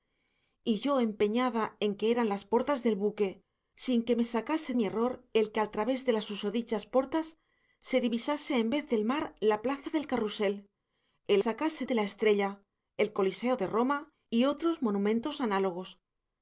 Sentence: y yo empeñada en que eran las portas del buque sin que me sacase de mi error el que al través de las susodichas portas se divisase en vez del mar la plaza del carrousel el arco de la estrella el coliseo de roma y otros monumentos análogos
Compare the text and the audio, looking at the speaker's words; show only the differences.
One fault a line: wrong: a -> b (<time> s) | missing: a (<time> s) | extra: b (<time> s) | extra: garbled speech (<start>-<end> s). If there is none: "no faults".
missing: de (4.7 s)
wrong: arco -> sacase (11.3 s)